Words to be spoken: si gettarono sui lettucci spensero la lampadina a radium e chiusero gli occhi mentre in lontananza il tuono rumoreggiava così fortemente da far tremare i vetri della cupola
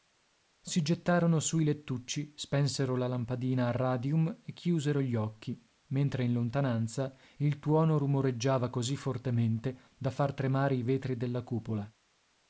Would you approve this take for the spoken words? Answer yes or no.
yes